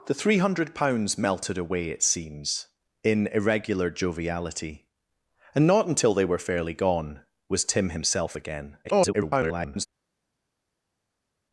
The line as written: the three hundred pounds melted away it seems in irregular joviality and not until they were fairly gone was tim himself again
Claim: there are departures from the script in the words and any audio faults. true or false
true